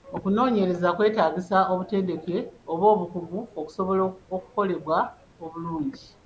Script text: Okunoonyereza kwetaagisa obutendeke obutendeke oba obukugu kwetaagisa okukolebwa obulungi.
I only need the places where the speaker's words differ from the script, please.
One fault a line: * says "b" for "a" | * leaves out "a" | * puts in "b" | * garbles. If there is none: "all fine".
* leaves out "obutendeke"
* says "okusobola" for "kwetaagisa"